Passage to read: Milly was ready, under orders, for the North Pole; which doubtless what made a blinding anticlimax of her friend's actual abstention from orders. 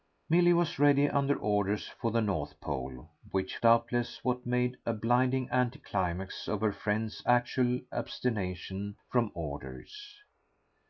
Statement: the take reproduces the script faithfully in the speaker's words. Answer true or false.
true